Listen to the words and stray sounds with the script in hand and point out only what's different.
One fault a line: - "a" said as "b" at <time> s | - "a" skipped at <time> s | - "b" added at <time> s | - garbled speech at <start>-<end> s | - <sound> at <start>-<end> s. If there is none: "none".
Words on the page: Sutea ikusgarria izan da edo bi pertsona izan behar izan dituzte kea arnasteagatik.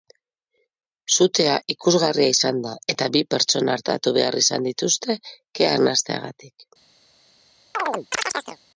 - "edo" said as "eta" at 2.9 s
- "izan" said as "artatu" at 3.8 s
- chirp at 7.7-8.6 s